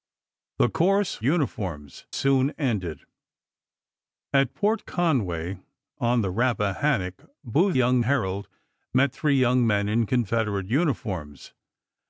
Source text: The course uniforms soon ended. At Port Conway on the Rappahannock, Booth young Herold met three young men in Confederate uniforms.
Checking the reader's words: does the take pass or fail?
pass